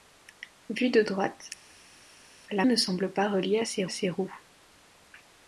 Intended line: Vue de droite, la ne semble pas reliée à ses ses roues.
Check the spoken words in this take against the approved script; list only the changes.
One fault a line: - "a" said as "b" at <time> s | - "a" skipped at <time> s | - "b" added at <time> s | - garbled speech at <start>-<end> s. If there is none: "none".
none